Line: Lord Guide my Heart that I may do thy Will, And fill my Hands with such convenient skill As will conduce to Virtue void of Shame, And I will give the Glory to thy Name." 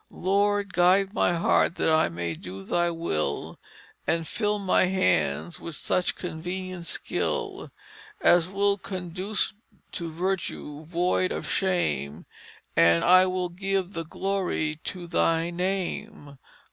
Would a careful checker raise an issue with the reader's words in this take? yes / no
no